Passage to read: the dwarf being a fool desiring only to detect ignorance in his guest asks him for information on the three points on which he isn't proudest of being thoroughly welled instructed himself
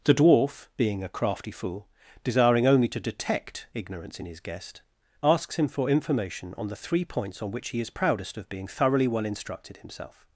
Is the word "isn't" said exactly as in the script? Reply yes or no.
no